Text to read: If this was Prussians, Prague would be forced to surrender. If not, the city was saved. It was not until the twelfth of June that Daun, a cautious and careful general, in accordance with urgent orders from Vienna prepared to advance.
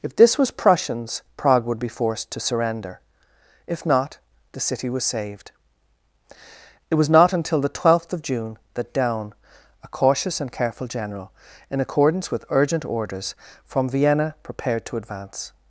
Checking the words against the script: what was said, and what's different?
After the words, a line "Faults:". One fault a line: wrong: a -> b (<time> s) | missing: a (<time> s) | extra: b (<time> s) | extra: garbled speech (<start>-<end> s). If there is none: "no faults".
If this was Prussians, Prague would be forced to surrender. If not, the city was saved. It was not until the twelfth of June that Daun, a cautious and careful general, in accordance with urgent orders from Vienna prepared to advance.
Faults:
no faults